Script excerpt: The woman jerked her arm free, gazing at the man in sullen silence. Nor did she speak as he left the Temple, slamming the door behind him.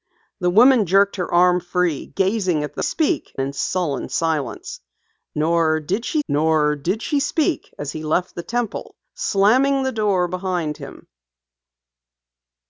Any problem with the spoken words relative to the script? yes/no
yes